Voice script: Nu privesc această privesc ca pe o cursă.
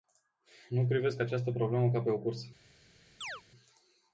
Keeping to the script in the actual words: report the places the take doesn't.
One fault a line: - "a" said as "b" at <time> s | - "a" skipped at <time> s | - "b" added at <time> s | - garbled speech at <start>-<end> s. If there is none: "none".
- "privesc" said as "problemă" at 1.5 s